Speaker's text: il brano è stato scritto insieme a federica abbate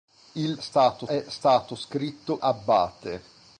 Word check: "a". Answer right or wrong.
wrong